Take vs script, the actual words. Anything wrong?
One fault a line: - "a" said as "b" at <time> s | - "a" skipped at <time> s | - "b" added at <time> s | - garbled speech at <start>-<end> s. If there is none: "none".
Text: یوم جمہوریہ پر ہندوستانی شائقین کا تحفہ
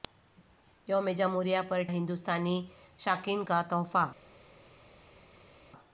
none